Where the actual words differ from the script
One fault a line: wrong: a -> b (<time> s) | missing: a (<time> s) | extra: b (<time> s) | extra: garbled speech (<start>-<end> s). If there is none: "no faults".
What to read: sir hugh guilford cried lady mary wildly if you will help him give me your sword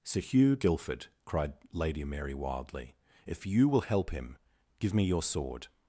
no faults